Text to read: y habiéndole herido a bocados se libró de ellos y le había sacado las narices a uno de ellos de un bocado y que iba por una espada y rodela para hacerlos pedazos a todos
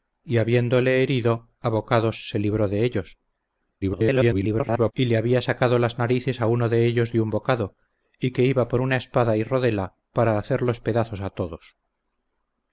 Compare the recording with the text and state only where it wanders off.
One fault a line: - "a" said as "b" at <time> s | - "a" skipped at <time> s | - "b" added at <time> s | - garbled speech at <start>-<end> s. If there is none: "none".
- garbled speech at 3.8-4.9 s